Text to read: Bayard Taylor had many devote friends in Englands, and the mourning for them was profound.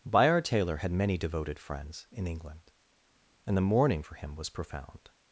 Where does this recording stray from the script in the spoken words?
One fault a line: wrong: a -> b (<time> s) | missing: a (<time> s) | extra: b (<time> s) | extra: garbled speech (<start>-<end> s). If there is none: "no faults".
wrong: devote -> devoted (1.2 s)
wrong: Englands -> England (2.3 s)
wrong: them -> him (4.2 s)